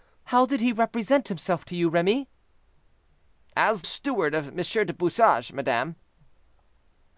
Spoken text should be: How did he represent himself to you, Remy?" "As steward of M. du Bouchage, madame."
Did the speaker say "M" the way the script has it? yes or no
yes